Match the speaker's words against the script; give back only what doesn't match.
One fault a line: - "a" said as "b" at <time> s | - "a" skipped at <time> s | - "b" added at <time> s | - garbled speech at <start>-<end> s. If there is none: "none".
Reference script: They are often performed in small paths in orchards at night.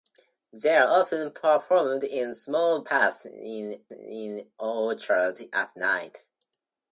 - "in" added at 3.9 s